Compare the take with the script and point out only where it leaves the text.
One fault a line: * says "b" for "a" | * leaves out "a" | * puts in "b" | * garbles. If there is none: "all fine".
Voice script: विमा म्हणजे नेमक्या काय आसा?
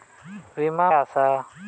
* leaves out "म्हणजे नेमक्या काय"